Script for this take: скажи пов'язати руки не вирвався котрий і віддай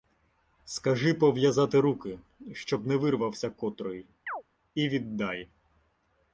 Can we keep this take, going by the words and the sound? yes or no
no